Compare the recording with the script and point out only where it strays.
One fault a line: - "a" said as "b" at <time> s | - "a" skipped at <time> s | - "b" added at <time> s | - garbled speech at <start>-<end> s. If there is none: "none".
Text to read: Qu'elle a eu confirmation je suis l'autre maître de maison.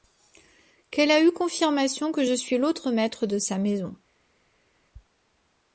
- "que" added at 2.1 s
- "sa" added at 3.4 s